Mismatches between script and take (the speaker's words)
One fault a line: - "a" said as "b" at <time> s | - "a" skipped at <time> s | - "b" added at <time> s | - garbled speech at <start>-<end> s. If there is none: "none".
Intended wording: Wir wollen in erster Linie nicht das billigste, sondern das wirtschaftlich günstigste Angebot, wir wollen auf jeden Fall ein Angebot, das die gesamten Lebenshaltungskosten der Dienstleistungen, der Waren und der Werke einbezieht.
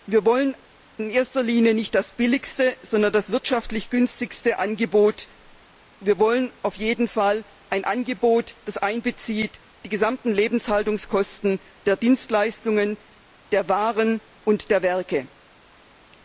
none